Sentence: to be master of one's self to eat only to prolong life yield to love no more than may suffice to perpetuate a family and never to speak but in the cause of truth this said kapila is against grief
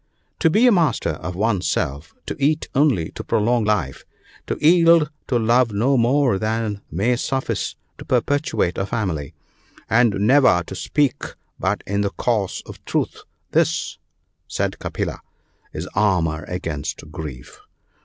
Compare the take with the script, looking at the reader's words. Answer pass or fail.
fail